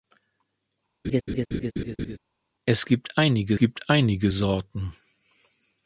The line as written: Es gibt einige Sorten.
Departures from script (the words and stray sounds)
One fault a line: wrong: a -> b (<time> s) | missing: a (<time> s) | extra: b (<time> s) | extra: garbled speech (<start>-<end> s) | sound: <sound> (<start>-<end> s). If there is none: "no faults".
sound: laugh (1.0-2.2 s)
extra: gibt einige (3.6 s)